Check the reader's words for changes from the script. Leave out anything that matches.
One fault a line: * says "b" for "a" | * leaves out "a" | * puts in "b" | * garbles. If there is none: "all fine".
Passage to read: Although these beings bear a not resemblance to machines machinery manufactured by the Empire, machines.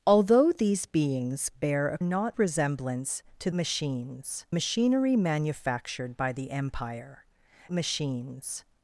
all fine